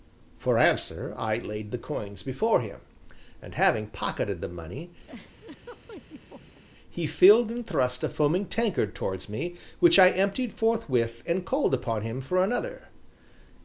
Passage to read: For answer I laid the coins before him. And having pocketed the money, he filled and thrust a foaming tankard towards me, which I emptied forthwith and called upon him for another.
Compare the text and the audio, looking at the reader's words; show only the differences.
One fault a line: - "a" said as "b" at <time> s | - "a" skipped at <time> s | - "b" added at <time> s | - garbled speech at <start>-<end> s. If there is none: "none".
none